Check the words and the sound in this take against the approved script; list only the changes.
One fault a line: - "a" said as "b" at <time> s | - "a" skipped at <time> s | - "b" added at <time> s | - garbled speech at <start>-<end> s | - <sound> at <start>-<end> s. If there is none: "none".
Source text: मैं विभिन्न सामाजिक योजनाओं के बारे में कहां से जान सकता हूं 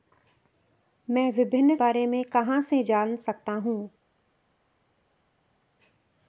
- "सामाजिक योजनाओं के" skipped at 1.8 s